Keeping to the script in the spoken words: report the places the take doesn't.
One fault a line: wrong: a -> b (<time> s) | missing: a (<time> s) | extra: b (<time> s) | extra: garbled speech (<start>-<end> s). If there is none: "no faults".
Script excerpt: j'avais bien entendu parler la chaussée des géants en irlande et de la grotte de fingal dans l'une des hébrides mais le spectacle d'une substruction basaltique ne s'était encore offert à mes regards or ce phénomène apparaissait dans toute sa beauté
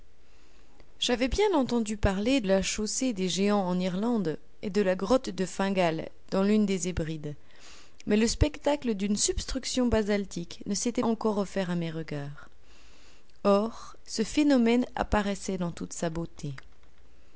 no faults